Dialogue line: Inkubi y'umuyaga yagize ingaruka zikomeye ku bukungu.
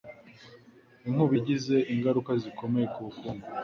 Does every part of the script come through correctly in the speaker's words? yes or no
no